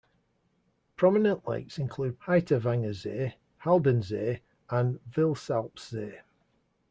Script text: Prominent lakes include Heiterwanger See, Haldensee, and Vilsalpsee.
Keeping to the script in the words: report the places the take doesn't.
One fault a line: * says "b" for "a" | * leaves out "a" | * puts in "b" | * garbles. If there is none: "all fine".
all fine